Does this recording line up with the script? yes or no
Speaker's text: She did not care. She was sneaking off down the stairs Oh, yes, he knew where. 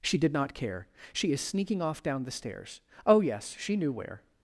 no